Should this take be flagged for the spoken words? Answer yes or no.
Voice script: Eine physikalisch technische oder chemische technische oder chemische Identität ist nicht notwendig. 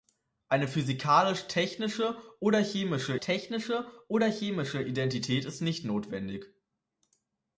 no